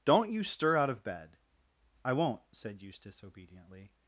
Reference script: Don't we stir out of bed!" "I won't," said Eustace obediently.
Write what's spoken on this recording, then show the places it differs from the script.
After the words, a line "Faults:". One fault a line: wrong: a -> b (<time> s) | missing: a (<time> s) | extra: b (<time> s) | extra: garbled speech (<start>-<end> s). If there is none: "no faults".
Don't you stir out of bed!" "I won't," said Eustace obediently.
Faults:
wrong: we -> you (0.3 s)